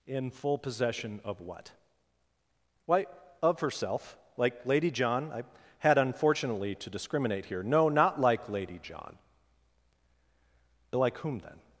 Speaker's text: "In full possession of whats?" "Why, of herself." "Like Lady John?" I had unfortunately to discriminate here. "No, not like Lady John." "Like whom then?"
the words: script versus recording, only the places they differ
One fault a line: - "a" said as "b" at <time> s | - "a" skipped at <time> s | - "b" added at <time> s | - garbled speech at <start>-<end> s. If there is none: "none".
- "whats" said as "what" at 1.4 s